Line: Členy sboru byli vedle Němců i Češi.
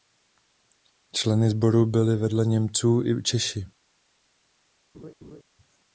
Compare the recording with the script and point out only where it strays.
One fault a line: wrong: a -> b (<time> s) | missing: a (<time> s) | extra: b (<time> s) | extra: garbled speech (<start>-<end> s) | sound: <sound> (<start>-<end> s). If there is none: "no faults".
sound: laugh (4.9-5.4 s)